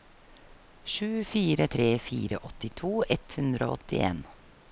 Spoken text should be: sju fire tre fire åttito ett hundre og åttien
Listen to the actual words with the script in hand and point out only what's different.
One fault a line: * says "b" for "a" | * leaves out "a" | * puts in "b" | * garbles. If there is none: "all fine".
all fine